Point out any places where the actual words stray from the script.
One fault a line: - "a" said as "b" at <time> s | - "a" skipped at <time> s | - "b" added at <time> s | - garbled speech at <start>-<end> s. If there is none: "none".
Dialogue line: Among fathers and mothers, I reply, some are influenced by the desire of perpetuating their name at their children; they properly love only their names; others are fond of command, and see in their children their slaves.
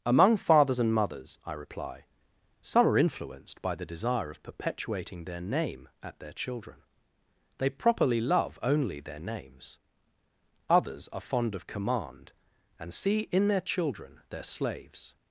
none